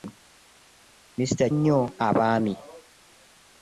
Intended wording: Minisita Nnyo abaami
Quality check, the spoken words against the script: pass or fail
pass